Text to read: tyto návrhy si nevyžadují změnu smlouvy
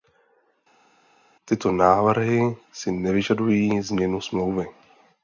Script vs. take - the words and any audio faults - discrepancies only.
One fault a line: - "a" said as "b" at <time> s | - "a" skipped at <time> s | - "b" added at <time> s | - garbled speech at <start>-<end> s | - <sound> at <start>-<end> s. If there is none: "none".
none